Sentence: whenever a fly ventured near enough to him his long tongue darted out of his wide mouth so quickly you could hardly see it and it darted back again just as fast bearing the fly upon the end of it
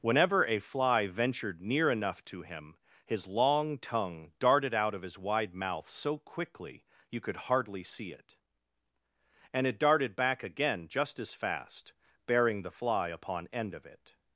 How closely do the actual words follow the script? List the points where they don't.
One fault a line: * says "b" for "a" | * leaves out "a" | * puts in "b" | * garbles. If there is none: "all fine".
* leaves out "the"